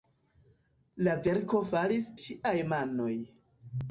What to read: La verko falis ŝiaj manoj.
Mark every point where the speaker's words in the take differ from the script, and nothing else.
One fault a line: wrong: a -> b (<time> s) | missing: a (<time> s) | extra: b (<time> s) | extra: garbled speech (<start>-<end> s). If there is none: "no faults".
no faults